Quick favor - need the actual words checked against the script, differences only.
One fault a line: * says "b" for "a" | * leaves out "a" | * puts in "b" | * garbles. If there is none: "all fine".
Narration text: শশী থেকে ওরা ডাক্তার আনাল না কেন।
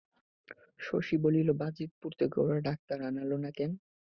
* puts in "বলিল বাজিতপুর"